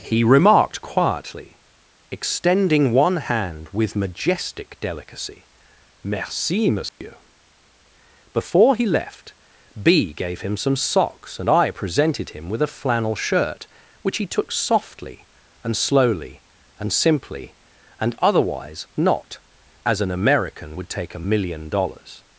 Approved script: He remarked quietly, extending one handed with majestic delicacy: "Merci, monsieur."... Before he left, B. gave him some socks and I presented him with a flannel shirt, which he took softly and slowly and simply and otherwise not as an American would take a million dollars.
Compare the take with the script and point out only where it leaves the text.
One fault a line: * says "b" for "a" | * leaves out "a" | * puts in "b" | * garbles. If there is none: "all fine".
* says "hand" for "handed"